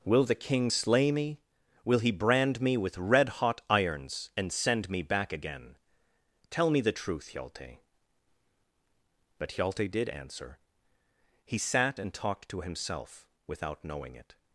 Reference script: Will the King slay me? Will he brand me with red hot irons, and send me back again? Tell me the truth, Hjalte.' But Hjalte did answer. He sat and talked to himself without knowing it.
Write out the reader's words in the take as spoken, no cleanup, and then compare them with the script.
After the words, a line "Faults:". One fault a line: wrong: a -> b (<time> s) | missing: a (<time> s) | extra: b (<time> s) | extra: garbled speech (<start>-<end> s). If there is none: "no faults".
Will the King slay me? Will he brand me with red hot irons, and send me back again? Tell me the truth, Hjalte.' But Hjalte did answer. He sat and talked to himself without knowing it.
Faults:
no faults